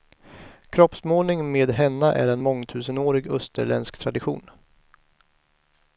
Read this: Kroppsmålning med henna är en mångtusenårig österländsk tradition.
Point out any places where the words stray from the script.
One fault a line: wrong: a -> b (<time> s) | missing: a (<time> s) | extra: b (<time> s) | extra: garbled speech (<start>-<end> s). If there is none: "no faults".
no faults